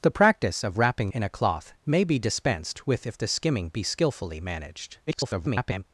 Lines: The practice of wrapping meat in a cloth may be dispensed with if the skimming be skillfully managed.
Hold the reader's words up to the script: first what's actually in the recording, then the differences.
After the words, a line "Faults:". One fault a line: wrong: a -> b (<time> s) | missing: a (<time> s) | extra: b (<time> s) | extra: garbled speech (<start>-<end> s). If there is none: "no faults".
The practice of wrapping in a cloth may be dispensed with if the skimming be skillfully managed. [garbled]
Faults:
missing: meat (1.1 s)
extra: garbled speech (5.1-5.8 s)